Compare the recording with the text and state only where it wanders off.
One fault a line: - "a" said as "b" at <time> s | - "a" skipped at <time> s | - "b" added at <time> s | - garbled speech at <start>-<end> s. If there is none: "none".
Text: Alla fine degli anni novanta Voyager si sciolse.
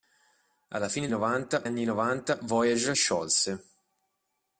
- "degli" said as "novanta" at 1.1 s
- "si" skipped at 3.0 s